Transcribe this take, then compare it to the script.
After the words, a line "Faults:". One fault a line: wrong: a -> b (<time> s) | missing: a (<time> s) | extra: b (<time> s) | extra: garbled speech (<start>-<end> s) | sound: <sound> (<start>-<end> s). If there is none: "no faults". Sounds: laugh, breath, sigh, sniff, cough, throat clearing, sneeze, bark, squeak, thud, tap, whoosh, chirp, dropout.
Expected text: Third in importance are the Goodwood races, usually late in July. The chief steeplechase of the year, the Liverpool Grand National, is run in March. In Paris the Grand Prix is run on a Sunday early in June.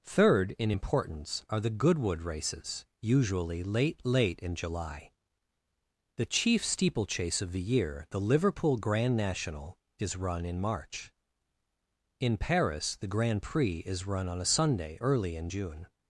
Third in importance are the Goodwood races, usually late late in July. The chief steeplechase of the year, the Liverpool Grand National, is run in March. In Paris the Grand Prix is run on a Sunday early in June.
Faults:
extra: late (4.0 s)